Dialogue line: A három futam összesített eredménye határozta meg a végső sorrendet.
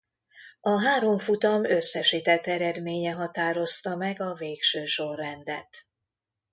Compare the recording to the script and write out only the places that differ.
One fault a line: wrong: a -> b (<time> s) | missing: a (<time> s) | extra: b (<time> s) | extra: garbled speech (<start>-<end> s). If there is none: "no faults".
no faults